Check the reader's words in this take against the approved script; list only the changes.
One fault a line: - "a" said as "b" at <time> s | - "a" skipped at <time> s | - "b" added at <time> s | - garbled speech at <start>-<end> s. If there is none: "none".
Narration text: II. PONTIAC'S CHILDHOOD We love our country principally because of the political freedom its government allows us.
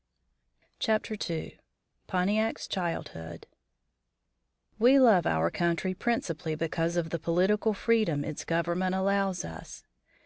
none